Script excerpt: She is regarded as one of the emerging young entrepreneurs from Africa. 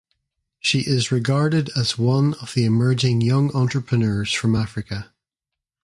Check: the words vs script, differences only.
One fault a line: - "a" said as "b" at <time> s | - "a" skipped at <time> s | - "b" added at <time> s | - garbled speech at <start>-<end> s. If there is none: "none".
none